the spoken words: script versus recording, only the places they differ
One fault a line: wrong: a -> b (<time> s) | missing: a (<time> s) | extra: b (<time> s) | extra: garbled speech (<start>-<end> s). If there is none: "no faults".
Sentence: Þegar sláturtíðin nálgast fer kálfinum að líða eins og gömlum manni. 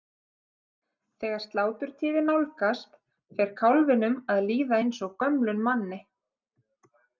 no faults